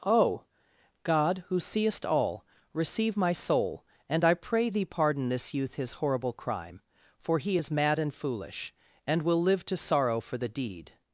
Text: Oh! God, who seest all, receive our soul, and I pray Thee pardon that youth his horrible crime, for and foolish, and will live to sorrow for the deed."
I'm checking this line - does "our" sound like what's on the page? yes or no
no